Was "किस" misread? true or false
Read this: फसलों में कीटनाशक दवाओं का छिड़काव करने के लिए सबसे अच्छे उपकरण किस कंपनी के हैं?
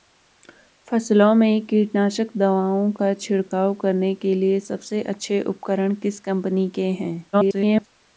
false